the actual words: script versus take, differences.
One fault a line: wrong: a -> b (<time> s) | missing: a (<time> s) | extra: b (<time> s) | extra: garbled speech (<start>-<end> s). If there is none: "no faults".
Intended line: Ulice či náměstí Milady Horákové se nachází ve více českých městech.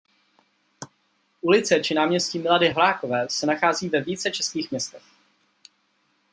no faults